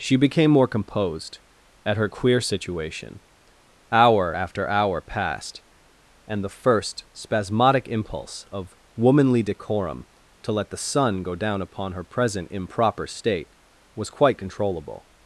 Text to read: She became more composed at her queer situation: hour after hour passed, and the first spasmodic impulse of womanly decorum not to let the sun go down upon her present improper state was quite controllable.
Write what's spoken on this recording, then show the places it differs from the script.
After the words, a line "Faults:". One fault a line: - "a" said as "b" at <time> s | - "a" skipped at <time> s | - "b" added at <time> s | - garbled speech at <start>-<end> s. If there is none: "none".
She became more composed at her queer situation: hour after hour passed, and the first spasmodic impulse of womanly decorum to let the sun go down upon her present improper state was quite controllable.
Faults:
- "not" skipped at 10.0 s